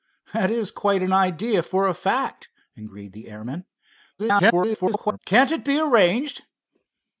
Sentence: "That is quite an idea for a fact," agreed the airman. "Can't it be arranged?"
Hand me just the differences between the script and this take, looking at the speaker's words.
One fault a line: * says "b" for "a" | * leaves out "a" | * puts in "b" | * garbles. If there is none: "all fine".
* garbles